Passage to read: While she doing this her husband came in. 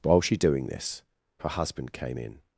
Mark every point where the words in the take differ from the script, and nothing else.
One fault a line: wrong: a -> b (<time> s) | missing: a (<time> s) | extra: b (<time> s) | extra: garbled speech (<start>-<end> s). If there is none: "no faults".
no faults